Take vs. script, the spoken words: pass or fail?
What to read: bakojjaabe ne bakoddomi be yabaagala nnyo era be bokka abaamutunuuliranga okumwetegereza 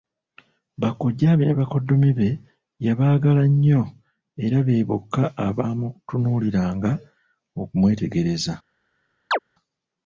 pass